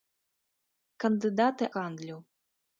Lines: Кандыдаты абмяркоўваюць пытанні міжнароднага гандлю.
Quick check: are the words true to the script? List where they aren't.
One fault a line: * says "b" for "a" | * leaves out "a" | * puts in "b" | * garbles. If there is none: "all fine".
* leaves out "абмяркоўваюць пытанні міжнароднага"